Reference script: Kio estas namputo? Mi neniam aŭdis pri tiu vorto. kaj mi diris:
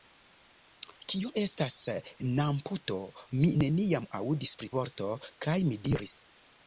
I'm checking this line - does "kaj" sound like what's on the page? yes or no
yes